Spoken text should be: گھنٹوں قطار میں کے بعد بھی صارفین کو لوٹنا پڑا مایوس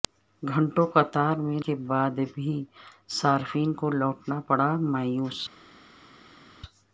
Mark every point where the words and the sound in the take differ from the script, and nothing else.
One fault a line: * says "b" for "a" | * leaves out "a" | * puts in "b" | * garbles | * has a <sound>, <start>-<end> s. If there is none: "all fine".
all fine